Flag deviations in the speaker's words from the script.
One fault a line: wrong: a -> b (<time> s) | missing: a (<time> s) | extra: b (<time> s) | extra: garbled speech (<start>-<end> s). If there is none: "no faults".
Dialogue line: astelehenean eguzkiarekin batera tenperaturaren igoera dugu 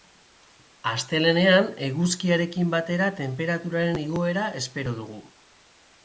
extra: espero (4.6 s)